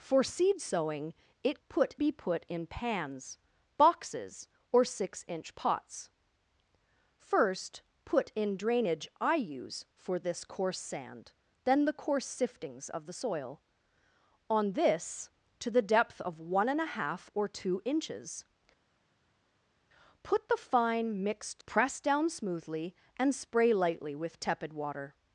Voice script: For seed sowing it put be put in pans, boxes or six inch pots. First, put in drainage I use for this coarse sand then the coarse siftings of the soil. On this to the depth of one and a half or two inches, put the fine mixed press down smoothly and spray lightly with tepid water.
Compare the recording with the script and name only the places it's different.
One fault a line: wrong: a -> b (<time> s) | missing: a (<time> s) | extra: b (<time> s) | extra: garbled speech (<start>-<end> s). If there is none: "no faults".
no faults